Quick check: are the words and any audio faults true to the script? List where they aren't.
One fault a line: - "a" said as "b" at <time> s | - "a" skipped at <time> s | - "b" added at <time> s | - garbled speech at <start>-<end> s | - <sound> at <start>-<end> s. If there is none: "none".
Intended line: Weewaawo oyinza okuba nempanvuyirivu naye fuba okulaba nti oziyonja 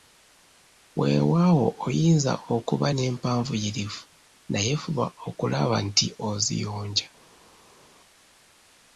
none